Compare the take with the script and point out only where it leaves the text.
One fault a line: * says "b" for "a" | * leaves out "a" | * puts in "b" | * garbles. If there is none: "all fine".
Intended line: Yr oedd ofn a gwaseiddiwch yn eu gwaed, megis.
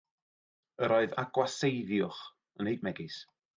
* leaves out "ofn"
* leaves out "gwaed"